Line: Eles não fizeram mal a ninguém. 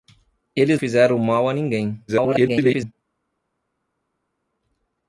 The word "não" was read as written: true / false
false